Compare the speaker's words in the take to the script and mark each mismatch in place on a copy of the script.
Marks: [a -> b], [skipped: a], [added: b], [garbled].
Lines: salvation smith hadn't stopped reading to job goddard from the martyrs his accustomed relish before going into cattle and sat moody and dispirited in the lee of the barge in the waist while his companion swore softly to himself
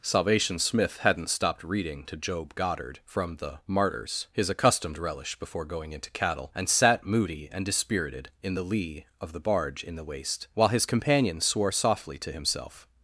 salvation smith hadn't stopped reading to job goddard from the martyrs his accustomed relish before going into cattle and sat moody and dispirited in the lee of the barge in the waist while his companion swore softly to himself